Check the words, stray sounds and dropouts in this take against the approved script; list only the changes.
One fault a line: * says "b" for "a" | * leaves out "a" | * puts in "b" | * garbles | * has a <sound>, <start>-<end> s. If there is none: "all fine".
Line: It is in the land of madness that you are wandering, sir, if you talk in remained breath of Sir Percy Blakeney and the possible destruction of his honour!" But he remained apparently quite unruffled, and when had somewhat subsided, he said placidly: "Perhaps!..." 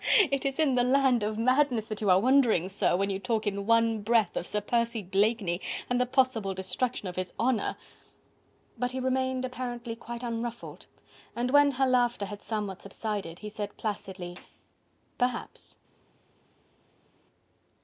* says "when" for "if"
* says "one" for "remained"
* puts in "her laughter"